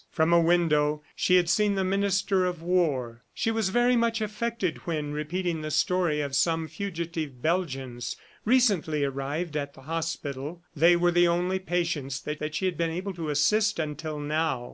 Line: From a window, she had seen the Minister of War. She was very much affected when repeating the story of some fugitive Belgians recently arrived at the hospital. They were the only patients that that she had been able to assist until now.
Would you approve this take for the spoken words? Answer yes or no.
yes